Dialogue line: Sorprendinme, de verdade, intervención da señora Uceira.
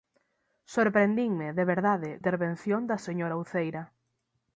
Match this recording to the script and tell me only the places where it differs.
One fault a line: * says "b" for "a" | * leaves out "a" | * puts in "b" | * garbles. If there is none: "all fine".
all fine